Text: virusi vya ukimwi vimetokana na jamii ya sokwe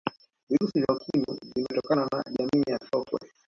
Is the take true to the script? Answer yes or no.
yes